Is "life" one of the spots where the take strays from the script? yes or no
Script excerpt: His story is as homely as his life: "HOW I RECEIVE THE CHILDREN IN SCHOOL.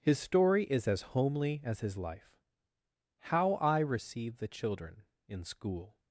no